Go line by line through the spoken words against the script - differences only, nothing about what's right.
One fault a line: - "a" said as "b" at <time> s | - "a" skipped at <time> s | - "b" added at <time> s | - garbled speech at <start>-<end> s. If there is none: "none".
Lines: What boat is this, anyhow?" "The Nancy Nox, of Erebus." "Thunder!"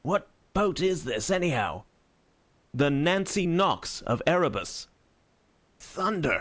none